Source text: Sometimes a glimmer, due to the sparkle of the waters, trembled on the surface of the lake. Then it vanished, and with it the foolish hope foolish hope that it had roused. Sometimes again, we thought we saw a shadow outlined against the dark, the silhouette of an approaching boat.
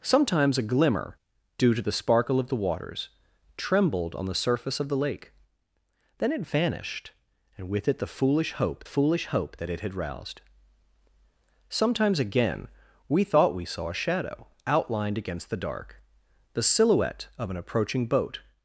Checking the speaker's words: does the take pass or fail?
pass